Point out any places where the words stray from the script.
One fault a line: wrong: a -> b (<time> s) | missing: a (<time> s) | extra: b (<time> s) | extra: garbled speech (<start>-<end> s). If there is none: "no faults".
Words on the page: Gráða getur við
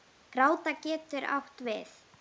extra: átt (1.4 s)